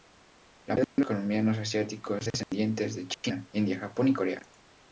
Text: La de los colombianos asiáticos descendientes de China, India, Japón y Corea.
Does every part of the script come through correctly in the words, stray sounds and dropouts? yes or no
no